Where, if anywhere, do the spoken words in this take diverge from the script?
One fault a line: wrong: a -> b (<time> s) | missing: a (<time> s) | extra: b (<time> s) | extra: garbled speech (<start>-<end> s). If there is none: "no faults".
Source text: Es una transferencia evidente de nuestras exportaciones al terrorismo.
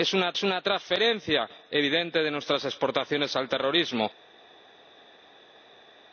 extra: es una (0.3 s)